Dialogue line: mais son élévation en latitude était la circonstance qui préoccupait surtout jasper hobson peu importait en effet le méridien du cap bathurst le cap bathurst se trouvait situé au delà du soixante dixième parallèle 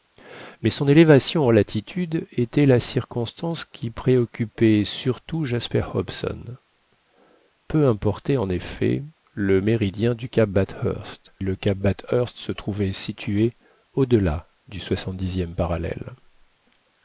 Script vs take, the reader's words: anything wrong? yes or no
no